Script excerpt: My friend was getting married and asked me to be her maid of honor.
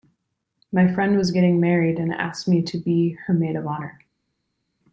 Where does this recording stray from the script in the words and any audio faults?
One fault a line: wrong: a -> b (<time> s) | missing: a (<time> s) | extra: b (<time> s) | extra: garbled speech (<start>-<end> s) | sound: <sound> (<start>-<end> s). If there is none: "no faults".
no faults